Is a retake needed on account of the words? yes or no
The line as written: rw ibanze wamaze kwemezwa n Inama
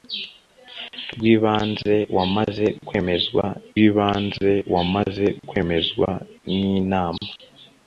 yes